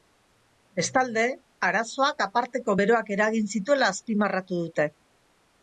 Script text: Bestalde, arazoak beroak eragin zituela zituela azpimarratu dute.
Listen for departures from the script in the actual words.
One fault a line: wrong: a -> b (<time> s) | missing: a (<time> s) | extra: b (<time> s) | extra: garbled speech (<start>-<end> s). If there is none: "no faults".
extra: aparteko (2.3 s)
missing: zituela (3.9 s)